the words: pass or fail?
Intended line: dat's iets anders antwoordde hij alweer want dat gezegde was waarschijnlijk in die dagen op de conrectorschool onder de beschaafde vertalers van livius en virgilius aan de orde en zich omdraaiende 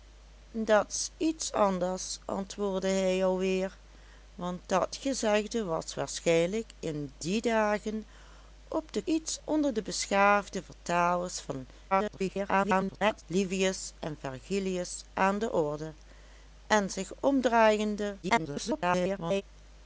fail